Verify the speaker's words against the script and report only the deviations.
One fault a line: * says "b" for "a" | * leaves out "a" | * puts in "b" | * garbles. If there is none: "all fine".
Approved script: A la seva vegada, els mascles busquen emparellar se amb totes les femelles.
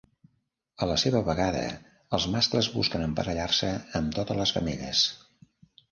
all fine